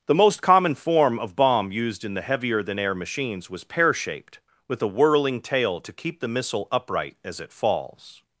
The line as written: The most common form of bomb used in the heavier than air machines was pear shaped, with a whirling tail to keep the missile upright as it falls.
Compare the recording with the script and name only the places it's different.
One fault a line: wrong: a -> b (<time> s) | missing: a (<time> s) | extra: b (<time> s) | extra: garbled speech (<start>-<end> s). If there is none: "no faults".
no faults